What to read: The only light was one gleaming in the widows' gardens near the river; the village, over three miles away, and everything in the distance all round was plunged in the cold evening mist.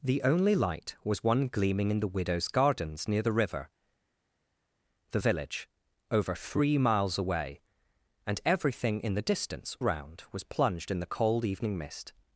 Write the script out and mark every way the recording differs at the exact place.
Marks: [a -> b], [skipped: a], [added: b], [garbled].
The only light was one gleaming in the widows' gardens near the river; the village, over three miles away, and everything in the distance [skipped: all] round was plunged in the cold evening mist.